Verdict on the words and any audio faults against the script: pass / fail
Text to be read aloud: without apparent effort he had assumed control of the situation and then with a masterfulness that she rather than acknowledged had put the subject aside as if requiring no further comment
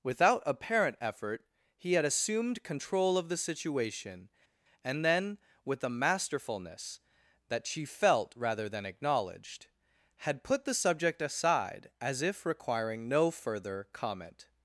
fail